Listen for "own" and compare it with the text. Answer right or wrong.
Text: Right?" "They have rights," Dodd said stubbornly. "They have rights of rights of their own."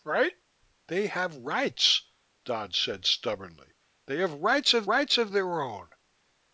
right